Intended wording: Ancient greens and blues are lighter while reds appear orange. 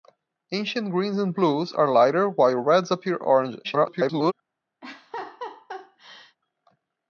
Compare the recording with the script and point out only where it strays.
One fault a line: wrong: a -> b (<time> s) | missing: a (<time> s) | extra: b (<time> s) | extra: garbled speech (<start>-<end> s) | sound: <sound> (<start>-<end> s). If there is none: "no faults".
extra: garbled speech (3.6-4.3 s)
sound: laugh (4.8-6.4 s)